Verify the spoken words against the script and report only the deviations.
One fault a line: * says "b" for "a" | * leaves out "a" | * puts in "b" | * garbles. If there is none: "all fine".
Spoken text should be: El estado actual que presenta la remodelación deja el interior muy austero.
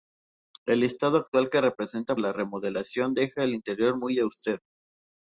all fine